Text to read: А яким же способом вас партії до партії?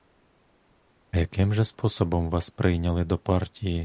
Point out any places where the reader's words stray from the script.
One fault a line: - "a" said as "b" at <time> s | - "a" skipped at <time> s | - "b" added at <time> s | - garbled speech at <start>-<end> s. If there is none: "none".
- "партії" said as "прийняли" at 2.5 s